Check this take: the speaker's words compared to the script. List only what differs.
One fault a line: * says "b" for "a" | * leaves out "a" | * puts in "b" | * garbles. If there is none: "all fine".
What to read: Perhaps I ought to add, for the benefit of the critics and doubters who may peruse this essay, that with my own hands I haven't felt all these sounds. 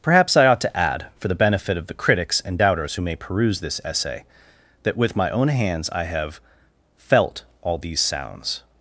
* says "have" for "haven't"